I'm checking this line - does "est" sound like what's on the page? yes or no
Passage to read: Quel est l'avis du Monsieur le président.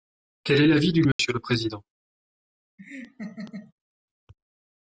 yes